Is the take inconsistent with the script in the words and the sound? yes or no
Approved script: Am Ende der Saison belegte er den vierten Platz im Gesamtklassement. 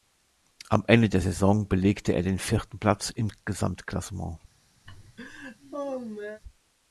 yes